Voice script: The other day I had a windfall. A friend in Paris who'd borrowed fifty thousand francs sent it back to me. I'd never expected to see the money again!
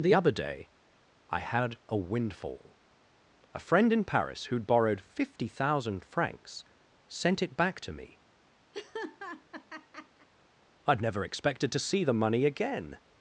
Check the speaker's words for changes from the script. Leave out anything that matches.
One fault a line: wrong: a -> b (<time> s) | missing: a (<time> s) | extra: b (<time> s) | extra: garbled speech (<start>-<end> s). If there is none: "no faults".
no faults